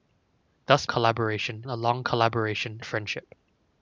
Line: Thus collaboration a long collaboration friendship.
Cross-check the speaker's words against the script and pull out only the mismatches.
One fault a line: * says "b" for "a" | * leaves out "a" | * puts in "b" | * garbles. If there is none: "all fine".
all fine